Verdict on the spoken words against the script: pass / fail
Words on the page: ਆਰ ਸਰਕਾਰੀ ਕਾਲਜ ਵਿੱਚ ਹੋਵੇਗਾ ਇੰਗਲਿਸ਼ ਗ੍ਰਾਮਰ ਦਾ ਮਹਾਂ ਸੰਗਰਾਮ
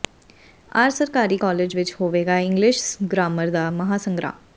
pass